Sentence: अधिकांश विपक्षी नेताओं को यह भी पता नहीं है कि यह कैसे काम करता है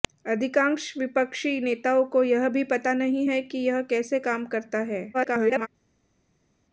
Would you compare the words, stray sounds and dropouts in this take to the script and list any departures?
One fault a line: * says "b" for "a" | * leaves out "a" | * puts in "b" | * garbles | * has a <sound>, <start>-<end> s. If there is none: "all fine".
* garbles